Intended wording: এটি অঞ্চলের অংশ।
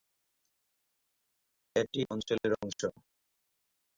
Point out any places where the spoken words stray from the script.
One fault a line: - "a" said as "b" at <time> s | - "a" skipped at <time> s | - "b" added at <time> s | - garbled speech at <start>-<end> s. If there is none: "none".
none